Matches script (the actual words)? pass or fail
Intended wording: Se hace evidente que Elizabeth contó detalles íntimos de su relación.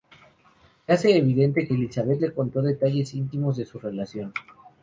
fail